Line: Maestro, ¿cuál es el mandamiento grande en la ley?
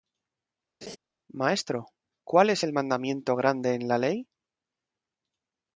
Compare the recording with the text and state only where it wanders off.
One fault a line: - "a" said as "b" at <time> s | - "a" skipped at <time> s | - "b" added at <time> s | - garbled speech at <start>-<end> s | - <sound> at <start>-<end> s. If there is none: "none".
- laugh at 0.8-1.0 s